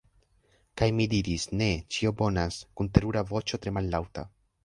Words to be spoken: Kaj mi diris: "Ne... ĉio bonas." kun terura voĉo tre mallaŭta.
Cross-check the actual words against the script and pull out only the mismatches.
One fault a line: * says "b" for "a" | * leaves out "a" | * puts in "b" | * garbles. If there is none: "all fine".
all fine